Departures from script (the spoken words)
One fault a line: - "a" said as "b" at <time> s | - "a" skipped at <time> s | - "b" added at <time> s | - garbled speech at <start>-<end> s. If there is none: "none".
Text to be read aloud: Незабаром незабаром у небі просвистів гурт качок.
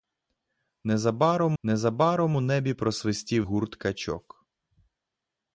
none